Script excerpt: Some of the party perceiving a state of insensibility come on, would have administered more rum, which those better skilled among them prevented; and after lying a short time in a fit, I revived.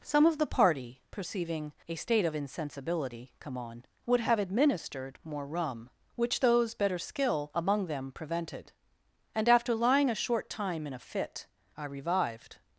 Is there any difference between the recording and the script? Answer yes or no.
yes